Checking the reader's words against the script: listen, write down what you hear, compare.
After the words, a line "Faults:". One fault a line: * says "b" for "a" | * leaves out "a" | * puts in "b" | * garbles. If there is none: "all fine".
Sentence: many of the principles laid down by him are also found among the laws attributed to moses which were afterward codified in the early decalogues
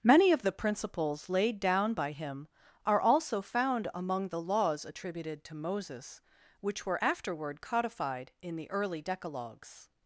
many of the principles laid down by him are also found among the laws attributed to moses which were afterward codified in the early decalogues
Faults:
all fine